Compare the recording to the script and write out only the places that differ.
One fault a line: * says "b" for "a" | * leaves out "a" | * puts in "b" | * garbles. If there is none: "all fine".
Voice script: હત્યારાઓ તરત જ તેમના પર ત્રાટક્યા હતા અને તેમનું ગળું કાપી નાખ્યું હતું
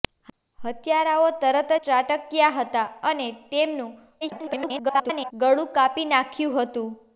* leaves out "જ તેમના પર"
* garbles